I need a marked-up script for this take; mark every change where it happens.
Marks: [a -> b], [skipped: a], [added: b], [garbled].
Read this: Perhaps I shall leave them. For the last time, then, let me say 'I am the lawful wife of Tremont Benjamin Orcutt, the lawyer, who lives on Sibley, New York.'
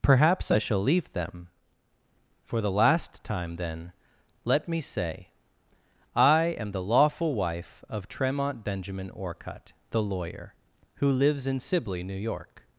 Perhaps I shall leave them. For the last time, then, let me say 'I am the lawful wife of Tremont Benjamin Orcutt, the lawyer, who lives [on -> in] Sibley, New York.'